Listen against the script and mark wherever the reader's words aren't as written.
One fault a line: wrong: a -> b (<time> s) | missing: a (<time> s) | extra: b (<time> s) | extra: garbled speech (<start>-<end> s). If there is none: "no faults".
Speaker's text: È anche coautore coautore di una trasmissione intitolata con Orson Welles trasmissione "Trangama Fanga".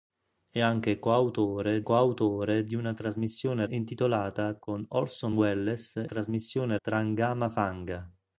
no faults